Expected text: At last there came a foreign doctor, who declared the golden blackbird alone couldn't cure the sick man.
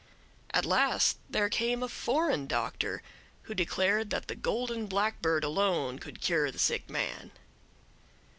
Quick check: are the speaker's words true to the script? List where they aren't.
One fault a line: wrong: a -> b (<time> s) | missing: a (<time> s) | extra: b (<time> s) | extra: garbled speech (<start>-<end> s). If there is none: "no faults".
extra: that (4.1 s)
wrong: couldn't -> could (6.0 s)